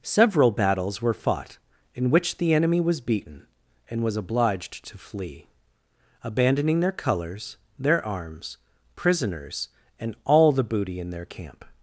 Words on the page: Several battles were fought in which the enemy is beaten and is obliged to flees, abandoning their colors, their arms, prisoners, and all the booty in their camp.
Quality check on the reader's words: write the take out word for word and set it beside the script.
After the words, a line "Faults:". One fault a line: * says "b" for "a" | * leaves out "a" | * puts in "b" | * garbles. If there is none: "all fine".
Several battles were fought in which the enemy was beaten and was obliged to flee, abandoning their colors, their arms, prisoners, and all the booty in their camp.
Faults:
* says "was" for "is"
* says "was" for "is"
* says "flee" for "flees"